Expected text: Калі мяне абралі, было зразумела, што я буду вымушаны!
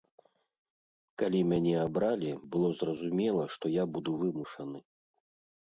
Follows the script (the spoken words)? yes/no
yes